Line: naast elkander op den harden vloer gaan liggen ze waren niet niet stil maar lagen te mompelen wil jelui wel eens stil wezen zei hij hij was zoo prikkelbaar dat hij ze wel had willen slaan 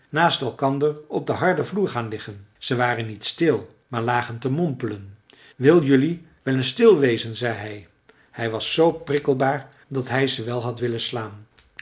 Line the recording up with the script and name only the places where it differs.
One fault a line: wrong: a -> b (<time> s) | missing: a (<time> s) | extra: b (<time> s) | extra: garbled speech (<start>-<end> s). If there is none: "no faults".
missing: niet (3.2 s)